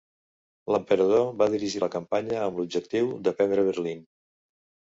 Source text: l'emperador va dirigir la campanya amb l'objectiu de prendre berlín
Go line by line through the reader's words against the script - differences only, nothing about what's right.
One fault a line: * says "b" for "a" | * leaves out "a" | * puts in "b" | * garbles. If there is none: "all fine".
all fine